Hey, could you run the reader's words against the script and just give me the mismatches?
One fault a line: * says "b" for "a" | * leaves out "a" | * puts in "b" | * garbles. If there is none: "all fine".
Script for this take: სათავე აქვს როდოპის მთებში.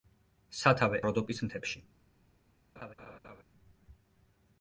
* leaves out "აქვს"